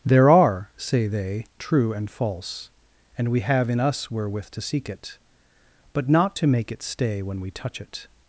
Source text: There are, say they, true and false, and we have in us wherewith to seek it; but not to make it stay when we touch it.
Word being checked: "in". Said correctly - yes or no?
yes